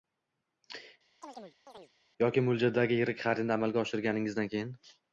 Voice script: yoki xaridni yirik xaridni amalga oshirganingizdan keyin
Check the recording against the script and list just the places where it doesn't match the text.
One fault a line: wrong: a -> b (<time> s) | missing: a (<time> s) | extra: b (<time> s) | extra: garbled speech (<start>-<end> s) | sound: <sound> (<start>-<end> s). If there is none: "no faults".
sound: chirp (1.2-1.9 s)
wrong: xaridni -> mo‘ljaldagi (2.5 s)